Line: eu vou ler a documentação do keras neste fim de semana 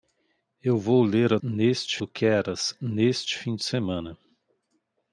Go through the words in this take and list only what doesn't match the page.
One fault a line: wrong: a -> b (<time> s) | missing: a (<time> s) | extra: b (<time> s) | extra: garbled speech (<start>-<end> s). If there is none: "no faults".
wrong: documentação -> neste (1.4 s)